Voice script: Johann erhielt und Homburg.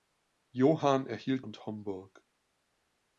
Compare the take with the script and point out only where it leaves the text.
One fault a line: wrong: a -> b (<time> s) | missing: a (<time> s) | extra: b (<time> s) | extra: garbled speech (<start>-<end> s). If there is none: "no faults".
no faults